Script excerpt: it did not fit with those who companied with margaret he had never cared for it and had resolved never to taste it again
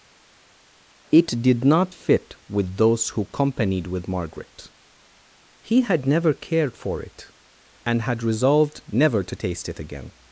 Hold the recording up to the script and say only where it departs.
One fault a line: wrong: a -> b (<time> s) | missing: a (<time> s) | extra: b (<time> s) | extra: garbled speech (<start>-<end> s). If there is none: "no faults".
no faults